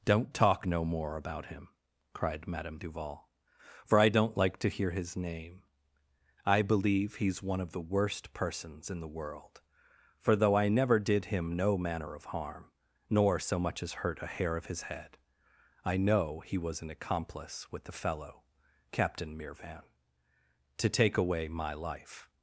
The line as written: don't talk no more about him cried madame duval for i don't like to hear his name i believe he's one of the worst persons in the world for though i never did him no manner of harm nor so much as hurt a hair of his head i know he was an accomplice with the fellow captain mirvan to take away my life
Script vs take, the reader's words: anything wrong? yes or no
no